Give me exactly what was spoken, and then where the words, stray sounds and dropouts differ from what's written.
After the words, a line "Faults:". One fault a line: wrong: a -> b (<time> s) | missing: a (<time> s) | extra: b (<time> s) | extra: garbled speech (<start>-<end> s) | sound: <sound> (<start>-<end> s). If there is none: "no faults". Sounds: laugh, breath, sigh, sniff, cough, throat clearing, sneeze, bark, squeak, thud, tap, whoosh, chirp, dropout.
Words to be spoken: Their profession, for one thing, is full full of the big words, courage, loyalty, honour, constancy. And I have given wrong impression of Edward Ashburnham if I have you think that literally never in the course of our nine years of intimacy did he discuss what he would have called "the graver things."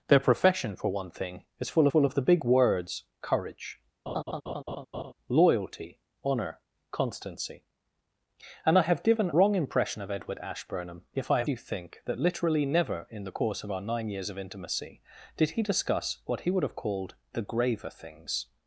Their profession, for one thing, is full full of the big words, courage, loyalty, honour, constancy. And I have given wrong impression of Edward Ashburnham if I have you think that literally never in the course of our nine years of intimacy did he discuss what he would have called "the graver things."
Faults:
sound: laugh (4.1-5.1 s)